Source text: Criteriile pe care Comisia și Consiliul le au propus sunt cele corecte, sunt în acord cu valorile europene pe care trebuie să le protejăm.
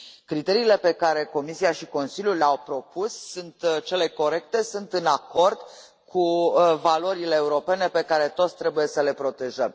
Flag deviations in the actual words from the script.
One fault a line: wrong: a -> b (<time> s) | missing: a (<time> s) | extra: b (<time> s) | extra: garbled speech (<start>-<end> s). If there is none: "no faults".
extra: toți (8.3 s)